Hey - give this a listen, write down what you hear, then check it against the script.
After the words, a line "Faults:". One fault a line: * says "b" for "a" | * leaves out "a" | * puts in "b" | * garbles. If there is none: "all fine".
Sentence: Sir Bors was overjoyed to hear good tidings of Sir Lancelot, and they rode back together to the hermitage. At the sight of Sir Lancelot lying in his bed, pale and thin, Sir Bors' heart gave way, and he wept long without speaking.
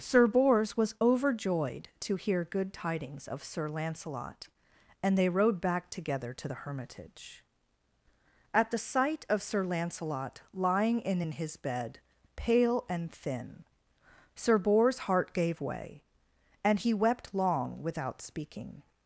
Sir Bors was overjoyed to hear good tidings of Sir Lancelot, and they rode back together to the hermitage. At the sight of Sir Lancelot lying in in his bed, pale and thin, Sir Bors' heart gave way, and he wept long without speaking.
Faults:
* puts in "in"